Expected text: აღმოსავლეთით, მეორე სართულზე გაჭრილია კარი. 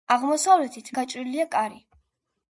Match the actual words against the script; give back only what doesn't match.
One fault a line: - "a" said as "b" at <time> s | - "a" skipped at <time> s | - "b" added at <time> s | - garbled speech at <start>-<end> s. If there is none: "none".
- "მეორე სართულზე" skipped at 0.9 s